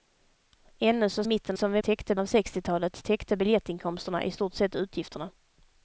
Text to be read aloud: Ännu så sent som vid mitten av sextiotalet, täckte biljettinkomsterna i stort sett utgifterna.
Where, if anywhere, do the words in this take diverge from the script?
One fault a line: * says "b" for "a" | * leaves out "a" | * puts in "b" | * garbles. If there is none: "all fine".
* says "mitten" for "sent"
* says "täckte" for "mitten"